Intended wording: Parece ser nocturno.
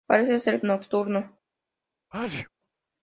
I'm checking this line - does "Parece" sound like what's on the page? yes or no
yes